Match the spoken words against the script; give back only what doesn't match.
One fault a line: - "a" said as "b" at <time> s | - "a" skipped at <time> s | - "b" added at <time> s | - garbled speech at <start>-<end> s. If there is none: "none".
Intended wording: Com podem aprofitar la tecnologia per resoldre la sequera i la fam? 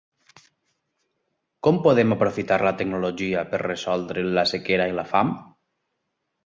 none